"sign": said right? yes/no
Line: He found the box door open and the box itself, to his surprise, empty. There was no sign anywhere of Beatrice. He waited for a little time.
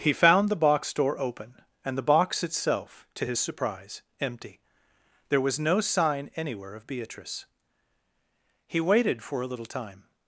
yes